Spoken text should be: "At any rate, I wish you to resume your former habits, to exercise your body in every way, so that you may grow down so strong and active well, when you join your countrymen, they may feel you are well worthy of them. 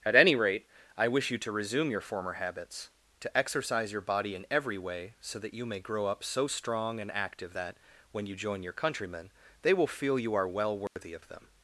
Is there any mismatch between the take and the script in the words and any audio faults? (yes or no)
yes